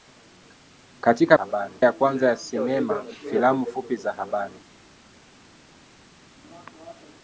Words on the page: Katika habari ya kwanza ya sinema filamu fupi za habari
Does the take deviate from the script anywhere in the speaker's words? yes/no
no